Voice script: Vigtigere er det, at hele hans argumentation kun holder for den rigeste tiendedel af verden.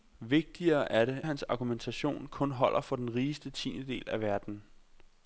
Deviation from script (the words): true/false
true